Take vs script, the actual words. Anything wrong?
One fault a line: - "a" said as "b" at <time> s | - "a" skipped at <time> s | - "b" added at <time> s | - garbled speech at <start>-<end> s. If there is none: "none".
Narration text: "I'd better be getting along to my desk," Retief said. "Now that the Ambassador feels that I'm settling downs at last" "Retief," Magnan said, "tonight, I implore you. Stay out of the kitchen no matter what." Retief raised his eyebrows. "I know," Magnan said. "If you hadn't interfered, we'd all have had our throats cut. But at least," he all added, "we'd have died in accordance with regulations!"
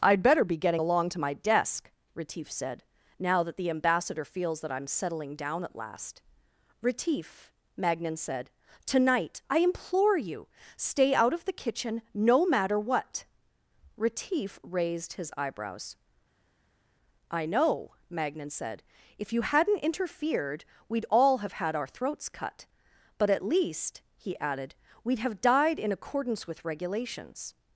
- "downs" said as "down" at 5.4 s
- "all" skipped at 24.4 s